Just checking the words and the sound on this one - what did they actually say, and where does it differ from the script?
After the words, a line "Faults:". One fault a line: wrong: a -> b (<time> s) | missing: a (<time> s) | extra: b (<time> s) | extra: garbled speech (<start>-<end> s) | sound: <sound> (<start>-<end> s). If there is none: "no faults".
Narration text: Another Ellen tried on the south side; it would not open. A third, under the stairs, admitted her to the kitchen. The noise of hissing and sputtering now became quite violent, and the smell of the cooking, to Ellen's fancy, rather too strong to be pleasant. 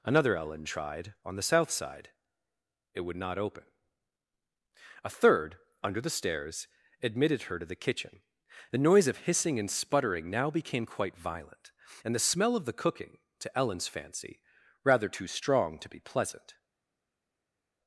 Another Ellen tried on the south side; it would not open. A third, under the stairs, admitted her to the kitchen. The noise of hissing and sputtering now became quite violent, and the smell of the cooking, to Ellen's fancy, rather too strong to be pleasant.
Faults:
no faults